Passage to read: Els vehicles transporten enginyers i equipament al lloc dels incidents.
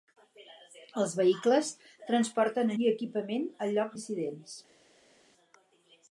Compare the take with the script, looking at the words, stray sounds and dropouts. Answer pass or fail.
fail